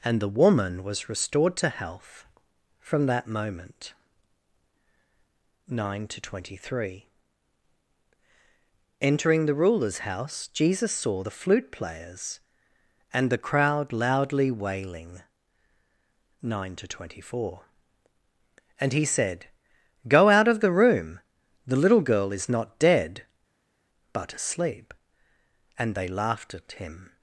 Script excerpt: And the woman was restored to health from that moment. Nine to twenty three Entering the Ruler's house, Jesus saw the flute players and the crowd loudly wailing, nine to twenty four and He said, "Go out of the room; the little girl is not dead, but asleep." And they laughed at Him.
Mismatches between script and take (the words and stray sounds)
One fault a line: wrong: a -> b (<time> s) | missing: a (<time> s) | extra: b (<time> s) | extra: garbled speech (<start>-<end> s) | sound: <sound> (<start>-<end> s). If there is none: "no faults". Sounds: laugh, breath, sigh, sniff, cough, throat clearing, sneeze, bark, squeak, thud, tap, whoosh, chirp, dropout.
no faults